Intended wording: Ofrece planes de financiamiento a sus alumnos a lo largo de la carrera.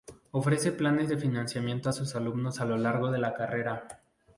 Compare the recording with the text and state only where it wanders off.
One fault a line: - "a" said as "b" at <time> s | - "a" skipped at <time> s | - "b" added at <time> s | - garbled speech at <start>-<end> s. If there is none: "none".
none